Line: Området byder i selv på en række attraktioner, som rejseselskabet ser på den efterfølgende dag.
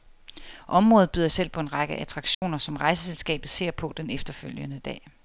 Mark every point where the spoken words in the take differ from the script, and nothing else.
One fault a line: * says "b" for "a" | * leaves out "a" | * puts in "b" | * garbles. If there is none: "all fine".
all fine